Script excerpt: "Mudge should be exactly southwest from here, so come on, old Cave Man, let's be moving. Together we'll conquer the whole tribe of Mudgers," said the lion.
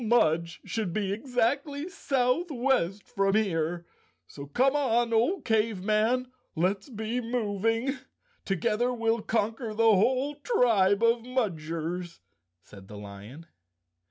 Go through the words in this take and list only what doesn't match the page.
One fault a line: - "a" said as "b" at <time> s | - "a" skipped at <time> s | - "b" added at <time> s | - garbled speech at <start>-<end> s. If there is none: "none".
none